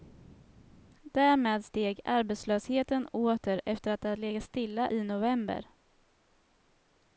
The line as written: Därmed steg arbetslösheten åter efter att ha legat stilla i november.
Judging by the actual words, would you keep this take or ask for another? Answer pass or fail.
pass